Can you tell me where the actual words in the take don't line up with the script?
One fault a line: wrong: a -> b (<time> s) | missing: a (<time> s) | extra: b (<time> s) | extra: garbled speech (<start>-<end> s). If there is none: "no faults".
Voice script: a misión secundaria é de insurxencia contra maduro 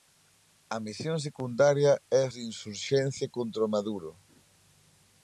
no faults